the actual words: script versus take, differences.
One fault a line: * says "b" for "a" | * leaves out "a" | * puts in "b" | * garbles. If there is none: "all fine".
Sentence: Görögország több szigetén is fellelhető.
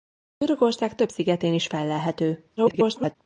* garbles